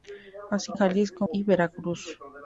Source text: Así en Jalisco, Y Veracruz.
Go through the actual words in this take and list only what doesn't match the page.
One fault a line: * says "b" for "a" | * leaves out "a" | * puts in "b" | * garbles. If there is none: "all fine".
all fine